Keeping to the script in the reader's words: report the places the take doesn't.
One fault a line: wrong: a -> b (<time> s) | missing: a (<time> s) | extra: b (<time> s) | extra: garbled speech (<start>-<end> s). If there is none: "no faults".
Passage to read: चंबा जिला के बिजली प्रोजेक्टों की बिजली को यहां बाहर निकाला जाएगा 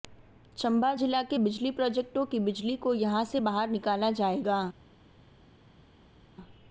extra: से (3.2 s)